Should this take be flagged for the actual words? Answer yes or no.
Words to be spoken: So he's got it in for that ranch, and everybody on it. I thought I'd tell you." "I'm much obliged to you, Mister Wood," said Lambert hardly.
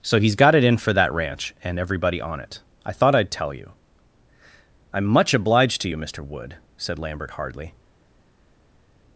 no